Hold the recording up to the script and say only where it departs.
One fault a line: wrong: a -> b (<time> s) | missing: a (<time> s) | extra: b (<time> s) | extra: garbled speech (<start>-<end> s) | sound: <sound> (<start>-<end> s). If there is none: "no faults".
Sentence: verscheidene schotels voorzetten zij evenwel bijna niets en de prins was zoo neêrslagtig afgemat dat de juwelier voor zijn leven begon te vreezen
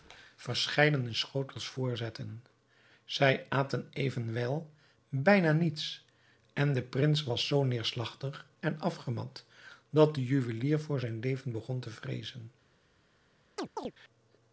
extra: aten (3.5 s)
extra: en (8.6 s)
sound: chirp (13.6-13.9 s)